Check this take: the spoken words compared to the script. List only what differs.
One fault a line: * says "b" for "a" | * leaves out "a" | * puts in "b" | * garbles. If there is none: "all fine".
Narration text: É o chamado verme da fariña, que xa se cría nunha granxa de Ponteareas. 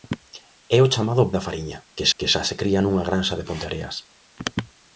* leaves out "verme"
* puts in "que"